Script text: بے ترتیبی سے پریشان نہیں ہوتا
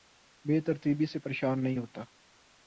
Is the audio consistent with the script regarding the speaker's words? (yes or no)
yes